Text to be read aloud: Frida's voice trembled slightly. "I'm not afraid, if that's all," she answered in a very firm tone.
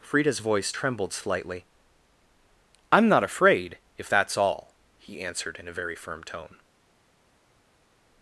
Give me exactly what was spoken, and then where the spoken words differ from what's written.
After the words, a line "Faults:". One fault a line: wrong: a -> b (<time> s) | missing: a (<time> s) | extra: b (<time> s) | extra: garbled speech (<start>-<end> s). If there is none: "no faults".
Frida's voice trembled slightly. "I'm not afraid, if that's all," he answered in a very firm tone.
Faults:
wrong: she -> he (5.0 s)